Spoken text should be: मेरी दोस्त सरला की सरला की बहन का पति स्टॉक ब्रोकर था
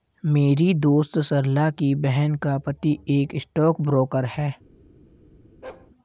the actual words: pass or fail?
fail